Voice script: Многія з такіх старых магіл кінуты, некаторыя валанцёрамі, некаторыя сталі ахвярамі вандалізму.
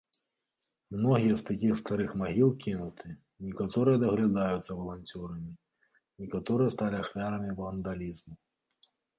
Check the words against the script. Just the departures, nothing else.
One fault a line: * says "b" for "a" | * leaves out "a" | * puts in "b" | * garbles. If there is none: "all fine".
* puts in "даглядаюцца"